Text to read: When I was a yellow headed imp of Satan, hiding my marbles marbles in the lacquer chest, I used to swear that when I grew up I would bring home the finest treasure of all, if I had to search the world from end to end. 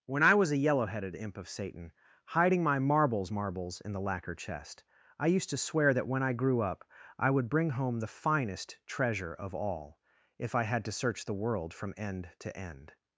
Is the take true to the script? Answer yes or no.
yes